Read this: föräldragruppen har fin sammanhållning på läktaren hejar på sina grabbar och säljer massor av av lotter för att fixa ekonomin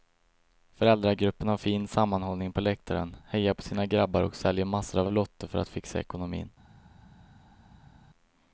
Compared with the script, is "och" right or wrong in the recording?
right